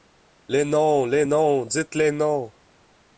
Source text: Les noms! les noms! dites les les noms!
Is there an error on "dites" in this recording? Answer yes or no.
no